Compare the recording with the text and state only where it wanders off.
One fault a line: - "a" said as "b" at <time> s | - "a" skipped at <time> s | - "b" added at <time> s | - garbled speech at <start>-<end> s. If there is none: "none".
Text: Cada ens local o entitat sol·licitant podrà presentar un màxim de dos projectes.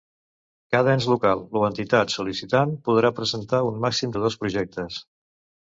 none